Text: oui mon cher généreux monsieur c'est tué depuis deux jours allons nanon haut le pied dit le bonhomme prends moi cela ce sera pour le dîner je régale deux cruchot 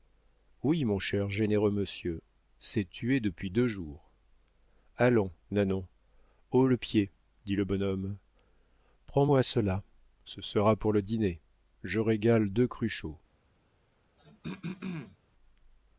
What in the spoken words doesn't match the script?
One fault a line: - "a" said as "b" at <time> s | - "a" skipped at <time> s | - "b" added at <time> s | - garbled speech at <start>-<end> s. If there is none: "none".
none